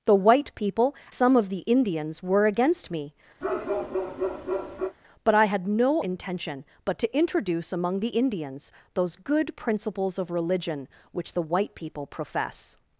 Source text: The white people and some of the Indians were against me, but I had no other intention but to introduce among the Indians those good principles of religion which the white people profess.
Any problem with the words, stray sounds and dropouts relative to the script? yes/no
yes